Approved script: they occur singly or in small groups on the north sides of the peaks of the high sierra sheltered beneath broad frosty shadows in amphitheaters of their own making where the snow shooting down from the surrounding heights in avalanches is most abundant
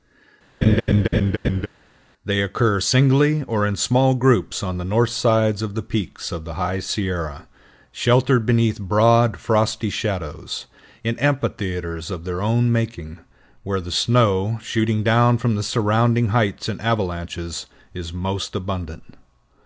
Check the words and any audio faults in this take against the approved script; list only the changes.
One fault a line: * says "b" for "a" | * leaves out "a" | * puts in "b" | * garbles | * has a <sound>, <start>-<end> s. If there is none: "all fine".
* has a laugh, 0.6-1.7 s